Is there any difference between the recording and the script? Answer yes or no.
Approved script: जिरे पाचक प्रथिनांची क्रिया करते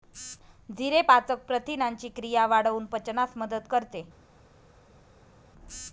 yes